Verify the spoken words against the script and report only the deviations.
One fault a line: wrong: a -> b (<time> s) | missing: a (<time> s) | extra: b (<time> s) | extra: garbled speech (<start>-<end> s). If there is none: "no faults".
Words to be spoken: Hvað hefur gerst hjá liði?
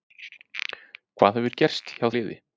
no faults